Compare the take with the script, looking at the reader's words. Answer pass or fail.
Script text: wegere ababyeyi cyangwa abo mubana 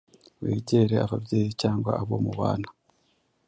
pass